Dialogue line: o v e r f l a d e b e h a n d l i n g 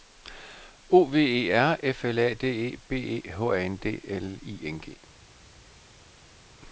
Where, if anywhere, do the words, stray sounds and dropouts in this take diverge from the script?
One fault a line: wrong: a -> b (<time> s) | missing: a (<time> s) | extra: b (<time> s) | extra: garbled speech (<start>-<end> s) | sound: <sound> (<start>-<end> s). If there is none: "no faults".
no faults